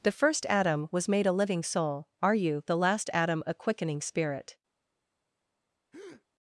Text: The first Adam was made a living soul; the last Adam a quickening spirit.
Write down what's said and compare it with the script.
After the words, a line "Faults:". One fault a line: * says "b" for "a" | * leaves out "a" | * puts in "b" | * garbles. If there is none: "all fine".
The first Adam was made a living soul; are you the last Adam a quickening spirit.
Faults:
* puts in "are you"